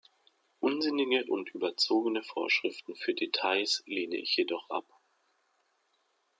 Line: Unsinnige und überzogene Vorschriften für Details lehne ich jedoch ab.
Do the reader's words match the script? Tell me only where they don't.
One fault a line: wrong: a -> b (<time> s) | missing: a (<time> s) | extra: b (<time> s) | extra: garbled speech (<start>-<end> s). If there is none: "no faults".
no faults